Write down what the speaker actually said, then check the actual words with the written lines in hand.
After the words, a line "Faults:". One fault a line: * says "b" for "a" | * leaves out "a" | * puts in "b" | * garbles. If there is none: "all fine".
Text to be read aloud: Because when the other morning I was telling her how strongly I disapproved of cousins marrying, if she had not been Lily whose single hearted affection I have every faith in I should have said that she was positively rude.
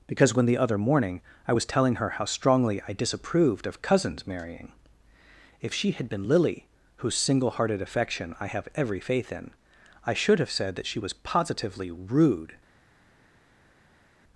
Because when the other morning I was telling her how strongly I disapproved of cousins marrying, if she had been Lily whose single hearted affection I have every faith in I should have said that she was positively rude.
Faults:
* leaves out "not"